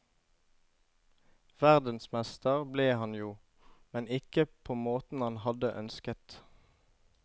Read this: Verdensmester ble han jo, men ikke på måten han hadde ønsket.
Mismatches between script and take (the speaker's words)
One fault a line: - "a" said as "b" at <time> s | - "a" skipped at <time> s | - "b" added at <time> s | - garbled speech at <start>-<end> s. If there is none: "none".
none